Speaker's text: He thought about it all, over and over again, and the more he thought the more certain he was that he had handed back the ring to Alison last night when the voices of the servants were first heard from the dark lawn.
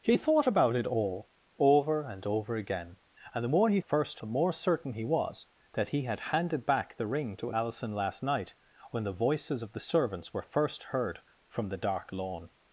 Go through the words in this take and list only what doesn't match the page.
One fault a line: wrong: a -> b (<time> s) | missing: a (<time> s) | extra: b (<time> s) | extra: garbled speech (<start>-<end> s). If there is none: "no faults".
wrong: thought -> first (3.8 s)